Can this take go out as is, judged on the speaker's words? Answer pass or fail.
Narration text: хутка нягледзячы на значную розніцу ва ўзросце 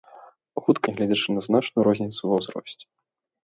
pass